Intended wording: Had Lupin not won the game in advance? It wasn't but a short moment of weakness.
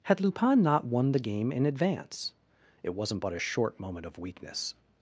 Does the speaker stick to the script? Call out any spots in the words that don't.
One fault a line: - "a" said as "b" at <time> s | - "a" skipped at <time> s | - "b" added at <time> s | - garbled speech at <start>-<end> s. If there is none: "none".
none